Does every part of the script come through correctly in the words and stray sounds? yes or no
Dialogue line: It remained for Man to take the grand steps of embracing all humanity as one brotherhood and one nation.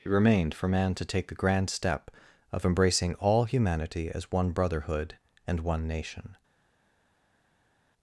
no